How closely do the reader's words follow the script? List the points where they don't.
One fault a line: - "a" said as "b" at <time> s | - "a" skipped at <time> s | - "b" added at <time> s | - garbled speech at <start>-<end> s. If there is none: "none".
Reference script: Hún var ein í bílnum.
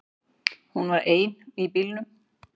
none